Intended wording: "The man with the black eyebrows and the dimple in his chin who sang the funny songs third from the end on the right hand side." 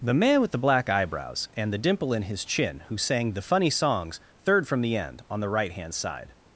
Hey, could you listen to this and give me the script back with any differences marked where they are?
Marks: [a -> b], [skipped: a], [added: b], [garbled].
"The man with the black eyebrows and the dimple in his chin who sang the funny songs third from the end on the right hand side."